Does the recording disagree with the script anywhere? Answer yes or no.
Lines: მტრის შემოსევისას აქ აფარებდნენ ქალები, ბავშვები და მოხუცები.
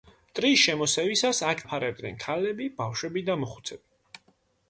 no